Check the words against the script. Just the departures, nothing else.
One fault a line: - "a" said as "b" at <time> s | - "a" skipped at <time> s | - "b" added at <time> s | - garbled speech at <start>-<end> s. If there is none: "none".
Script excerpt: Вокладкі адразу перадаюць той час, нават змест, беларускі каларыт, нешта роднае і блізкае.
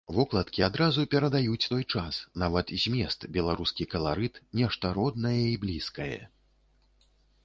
none